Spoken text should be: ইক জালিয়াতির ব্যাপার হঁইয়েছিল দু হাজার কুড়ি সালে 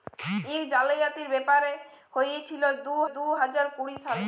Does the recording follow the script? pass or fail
fail